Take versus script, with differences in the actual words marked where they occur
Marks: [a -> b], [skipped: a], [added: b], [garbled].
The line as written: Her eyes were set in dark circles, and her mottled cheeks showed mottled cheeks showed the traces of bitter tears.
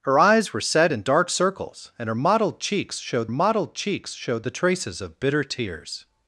Her eyes were set in dark circles, and her mottled cheeks showed mottled cheeks showed the traces of bitter tears.